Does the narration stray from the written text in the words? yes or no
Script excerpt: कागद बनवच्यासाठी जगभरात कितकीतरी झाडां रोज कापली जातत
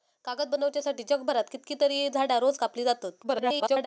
yes